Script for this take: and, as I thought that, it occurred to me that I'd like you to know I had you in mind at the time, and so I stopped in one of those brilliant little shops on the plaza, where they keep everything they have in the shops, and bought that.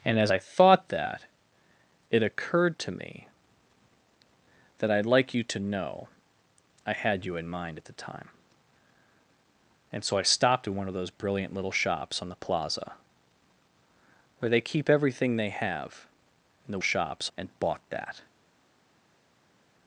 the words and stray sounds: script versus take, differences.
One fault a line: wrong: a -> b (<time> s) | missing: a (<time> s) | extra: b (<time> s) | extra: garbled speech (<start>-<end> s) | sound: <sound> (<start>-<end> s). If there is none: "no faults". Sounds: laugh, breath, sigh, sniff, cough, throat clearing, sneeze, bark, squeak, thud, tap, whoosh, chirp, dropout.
no faults